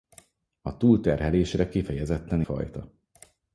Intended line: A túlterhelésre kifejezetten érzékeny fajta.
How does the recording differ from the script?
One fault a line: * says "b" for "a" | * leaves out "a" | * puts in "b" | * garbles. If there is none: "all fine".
* leaves out "érzékeny"